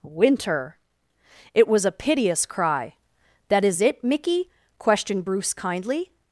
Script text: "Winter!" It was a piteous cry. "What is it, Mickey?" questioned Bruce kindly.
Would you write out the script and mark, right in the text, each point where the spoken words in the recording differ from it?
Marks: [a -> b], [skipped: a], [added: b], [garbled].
"Winter!" It was a piteous cry. ["What -> That] is it, Mickey?" questioned Bruce kindly.